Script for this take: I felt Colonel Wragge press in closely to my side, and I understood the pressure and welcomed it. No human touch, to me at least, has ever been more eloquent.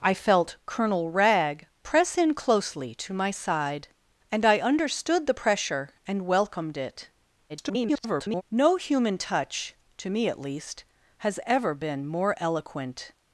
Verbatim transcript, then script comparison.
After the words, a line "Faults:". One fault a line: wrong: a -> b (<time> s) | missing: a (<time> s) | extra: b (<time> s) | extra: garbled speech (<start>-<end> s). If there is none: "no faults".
I felt Colonel Wragge press in closely to my side, and I understood the pressure and welcomed it. [garbled] No human touch, to me at least, has ever been more eloquent.
Faults:
extra: garbled speech (7.5-8.4 s)